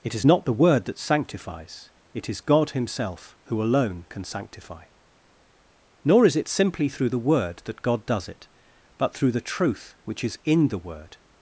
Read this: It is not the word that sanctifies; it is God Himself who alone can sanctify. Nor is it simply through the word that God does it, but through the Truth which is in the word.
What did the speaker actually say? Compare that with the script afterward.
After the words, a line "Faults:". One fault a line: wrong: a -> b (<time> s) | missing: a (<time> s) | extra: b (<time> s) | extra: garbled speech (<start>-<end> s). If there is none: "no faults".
It is not the word that sanctifies; it is God Himself who alone can sanctify. Nor is it simply through the word that God does it, but through the Truth which is in the word.
Faults:
no faults